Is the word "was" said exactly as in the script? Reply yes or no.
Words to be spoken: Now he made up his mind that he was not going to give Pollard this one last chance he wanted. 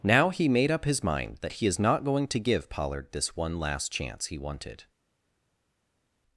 no